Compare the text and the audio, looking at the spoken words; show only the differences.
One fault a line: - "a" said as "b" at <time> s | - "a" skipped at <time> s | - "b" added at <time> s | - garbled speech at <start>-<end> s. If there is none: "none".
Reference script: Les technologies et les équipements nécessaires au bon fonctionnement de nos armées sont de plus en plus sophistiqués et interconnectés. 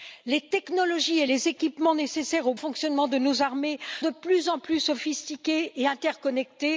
- "bon" skipped at 2.5 s
- "sont" skipped at 3.8 s